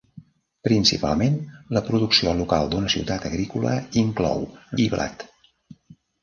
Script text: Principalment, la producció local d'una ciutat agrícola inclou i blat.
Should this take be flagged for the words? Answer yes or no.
no